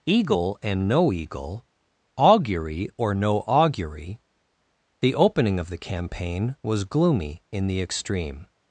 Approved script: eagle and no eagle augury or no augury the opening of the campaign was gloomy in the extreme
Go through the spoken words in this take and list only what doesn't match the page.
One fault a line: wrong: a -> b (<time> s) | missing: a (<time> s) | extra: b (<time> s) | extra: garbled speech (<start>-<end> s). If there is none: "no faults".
no faults